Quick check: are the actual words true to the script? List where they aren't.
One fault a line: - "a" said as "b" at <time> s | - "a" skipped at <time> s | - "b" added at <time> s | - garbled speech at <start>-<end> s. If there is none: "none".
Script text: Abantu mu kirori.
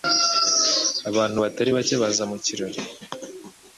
- "batari bake baza" added at 1.4 s